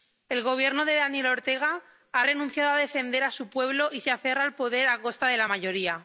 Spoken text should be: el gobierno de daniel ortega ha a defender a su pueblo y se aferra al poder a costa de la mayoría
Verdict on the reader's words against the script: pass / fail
fail